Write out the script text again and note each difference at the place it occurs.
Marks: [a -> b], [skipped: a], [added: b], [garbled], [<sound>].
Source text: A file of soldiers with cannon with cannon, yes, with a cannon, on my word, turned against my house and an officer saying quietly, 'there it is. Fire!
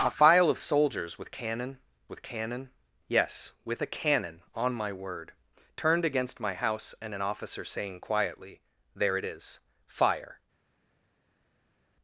A file of soldiers with cannon with cannon, yes, with a cannon, on my word, turned against my house and an officer saying quietly, 'there it is. Fire!